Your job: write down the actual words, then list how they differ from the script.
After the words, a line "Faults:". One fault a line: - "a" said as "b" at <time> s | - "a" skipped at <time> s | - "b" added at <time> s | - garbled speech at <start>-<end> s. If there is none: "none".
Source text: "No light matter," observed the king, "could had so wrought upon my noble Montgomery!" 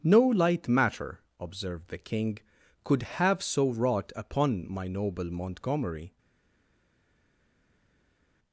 "No light matter," observed the king, "could have so wrought upon my noble Montgomery!"
Faults:
- "had" said as "have" at 3.0 s